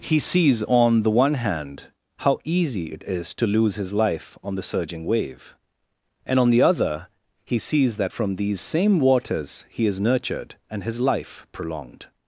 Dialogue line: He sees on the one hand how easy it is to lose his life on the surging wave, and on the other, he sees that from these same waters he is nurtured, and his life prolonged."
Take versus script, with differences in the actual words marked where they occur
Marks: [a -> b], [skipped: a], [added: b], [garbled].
He sees on the one hand how easy it is to lose his life on the surging wave, and on the other, he sees that from these same waters he is nurtured, and his life prolonged."